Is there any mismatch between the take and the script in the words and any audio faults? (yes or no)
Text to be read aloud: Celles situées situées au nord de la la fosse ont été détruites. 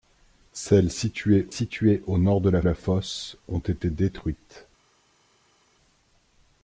no